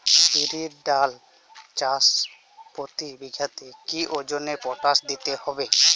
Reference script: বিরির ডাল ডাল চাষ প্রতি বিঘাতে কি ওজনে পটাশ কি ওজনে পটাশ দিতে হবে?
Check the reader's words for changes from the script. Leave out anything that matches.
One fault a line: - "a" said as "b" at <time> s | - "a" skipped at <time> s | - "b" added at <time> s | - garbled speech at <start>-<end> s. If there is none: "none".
- "ডাল" skipped at 1.1 s
- "কি ওজনে পটাশ" skipped at 5.0 s